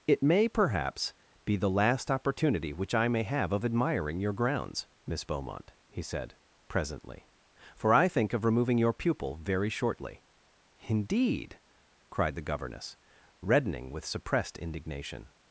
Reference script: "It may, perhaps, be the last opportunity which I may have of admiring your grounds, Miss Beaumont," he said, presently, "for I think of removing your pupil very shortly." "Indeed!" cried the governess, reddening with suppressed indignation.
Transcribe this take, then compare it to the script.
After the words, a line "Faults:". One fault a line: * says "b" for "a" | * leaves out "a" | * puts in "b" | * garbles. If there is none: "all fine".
"It may, perhaps, be the last opportunity which I may have of admiring your grounds, Miss Beaumont," he said, presently, "for I think of removing your pupil very shortly." "Indeed!" cried the governess, reddening with suppressed indignation.
Faults:
all fine